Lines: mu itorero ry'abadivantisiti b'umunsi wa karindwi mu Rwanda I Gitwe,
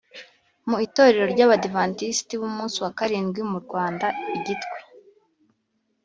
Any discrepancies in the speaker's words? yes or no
no